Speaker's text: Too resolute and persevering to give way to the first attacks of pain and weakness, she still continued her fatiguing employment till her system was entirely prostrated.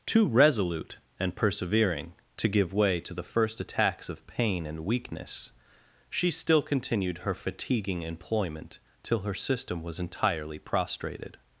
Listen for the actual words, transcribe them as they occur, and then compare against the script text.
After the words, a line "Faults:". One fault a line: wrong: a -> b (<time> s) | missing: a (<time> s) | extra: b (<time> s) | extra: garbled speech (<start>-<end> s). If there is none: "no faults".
Too resolute and persevering to give way to the first attacks of pain and weakness, she still continued her fatiguing employment till her system was entirely prostrated.
Faults:
no faults